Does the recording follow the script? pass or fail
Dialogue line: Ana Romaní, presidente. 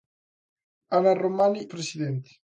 pass